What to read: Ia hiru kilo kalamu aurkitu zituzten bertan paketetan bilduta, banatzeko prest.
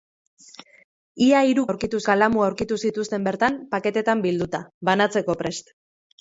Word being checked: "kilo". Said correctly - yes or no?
no